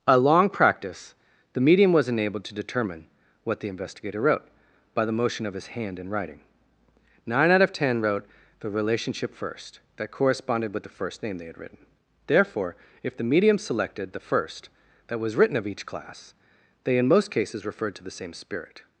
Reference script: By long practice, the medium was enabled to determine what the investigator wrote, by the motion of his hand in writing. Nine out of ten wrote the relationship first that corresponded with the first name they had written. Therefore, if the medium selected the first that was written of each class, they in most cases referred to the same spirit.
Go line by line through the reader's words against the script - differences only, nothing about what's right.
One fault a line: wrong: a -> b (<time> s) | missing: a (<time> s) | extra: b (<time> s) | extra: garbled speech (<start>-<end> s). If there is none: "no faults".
wrong: By -> A (0.1 s)